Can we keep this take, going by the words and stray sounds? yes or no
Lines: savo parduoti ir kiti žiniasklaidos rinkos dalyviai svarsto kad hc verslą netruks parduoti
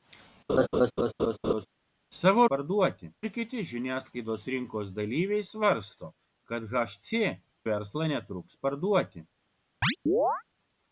no